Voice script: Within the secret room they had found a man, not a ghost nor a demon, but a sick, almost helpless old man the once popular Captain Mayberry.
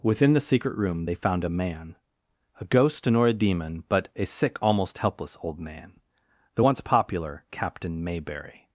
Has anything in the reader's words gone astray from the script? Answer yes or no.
yes